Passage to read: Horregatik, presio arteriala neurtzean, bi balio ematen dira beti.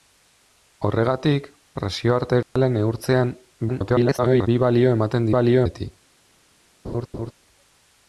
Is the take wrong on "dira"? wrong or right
wrong